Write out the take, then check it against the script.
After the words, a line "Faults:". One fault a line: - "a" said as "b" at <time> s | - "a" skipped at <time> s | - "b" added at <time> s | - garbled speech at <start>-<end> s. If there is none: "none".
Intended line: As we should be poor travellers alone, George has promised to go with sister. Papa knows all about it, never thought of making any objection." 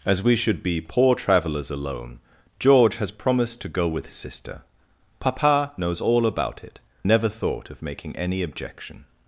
As we should be poor travellers alone, George has promised to go with sister. Papa knows all about it, never thought of making any objection."
Faults:
none